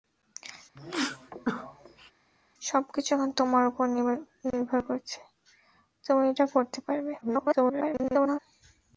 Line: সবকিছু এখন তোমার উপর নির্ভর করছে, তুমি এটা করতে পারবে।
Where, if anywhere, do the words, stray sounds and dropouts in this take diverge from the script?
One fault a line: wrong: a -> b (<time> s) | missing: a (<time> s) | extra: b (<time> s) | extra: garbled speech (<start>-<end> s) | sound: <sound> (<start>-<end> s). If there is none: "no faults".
sound: sneeze (0.8-2.1 s)
extra: garbled speech (7.2-8.4 s)